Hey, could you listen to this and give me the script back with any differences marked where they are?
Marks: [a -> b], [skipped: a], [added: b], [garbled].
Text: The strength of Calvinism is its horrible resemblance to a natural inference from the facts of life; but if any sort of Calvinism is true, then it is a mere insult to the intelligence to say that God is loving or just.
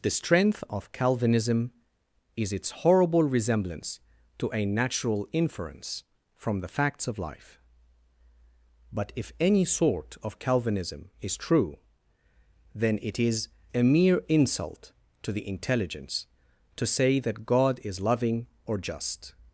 The strength of Calvinism is its horrible resemblance to a natural inference from the facts of life; but if any sort of Calvinism is true, then it is a mere insult to the intelligence to say that God is loving or just.